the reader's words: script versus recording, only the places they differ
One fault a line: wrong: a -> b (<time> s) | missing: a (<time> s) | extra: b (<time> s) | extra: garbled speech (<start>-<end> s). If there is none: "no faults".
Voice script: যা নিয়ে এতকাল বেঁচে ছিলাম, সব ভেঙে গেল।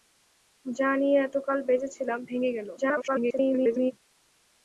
missing: সব (2.2 s)
extra: garbled speech (2.8-3.9 s)